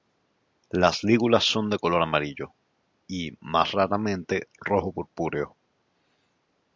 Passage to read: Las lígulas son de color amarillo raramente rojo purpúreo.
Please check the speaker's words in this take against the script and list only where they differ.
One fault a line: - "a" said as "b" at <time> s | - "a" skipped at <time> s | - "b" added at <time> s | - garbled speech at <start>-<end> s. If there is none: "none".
- "y más" added at 3.1 s